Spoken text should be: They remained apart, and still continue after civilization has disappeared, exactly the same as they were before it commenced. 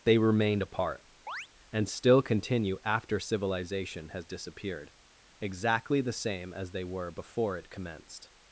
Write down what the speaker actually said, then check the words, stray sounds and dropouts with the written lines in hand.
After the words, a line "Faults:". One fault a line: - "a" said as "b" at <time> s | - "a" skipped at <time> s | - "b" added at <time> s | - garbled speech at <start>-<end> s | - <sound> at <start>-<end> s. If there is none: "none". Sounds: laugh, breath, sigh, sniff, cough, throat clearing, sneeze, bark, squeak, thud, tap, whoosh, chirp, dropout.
They remained apart, and still continue after civilization has disappeared, exactly the same as they were before it commenced.
Faults:
- chirp at 1.3-1.5 s